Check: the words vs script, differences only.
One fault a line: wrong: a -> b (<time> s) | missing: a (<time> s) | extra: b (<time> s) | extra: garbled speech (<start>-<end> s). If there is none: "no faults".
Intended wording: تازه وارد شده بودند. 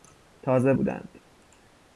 missing: وارد شده (0.7 s)